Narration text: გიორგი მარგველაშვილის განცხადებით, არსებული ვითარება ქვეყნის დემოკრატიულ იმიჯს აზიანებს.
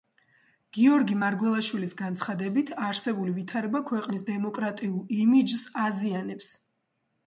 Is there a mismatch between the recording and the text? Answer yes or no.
no